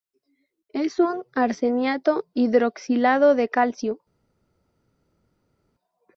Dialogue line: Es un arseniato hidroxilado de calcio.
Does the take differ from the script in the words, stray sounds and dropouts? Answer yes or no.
no